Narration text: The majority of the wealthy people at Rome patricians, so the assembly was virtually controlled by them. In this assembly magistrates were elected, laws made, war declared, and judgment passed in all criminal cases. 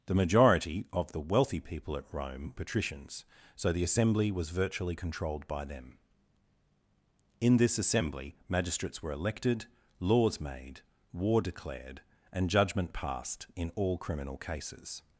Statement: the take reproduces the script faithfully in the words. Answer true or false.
true